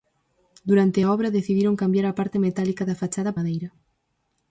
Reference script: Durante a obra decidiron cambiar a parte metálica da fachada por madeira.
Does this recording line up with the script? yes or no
no